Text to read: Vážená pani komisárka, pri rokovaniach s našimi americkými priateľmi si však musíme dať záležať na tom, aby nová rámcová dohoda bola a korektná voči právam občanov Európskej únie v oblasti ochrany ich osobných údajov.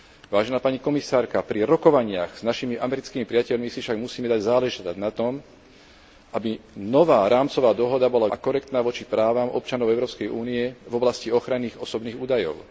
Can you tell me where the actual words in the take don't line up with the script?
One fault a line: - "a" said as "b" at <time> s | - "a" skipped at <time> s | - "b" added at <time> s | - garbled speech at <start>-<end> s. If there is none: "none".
none